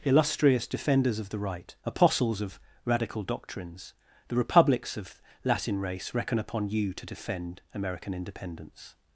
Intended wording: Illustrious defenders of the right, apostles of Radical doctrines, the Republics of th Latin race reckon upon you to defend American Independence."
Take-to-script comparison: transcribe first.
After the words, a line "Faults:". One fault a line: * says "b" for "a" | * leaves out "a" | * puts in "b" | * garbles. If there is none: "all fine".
Illustrious defenders of the right, apostles of Radical doctrines, the Republics of Latin race reckon upon you to defend American Independence."
Faults:
* leaves out "th"